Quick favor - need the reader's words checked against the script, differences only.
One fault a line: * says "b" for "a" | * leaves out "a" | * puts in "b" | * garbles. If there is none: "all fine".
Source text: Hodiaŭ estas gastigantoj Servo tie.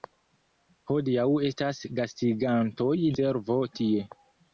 all fine